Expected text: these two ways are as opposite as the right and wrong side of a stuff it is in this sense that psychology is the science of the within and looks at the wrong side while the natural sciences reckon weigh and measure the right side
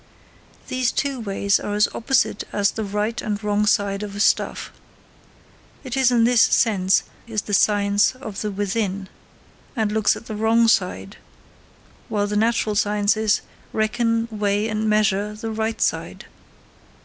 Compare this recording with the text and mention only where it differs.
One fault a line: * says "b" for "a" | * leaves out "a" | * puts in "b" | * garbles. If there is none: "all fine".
* leaves out "that psychology"